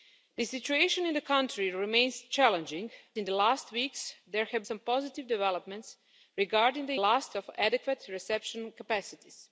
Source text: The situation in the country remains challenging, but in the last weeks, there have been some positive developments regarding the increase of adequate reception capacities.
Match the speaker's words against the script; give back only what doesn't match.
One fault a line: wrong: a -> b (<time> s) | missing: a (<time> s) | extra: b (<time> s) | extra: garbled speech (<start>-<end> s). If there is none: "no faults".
missing: but (2.9 s)
missing: been (4.6 s)
wrong: increase -> last (7.0 s)